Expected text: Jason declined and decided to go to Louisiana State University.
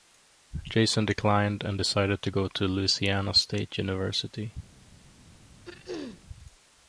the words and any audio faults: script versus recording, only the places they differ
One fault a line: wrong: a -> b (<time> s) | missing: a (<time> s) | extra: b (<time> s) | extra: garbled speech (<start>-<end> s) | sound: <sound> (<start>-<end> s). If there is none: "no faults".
sound: throat clearing (5.7-6.3 s)